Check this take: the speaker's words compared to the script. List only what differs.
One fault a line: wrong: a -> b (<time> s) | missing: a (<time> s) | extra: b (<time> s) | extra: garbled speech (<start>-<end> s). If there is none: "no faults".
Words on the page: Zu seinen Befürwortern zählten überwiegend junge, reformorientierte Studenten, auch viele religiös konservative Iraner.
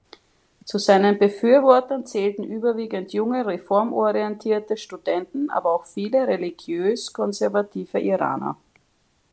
extra: aber (5.5 s)